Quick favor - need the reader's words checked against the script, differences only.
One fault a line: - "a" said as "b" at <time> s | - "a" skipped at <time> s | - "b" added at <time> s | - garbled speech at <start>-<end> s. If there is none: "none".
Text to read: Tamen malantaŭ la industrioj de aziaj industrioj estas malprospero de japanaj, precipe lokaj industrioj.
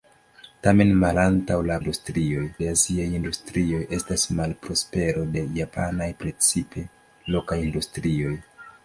none